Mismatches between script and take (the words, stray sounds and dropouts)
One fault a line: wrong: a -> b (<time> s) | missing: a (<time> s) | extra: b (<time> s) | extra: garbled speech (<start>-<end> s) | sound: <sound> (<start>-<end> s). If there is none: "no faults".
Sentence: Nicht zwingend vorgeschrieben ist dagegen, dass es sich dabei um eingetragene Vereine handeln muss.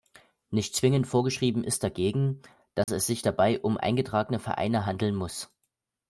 sound: dropout (2.8-2.9 s)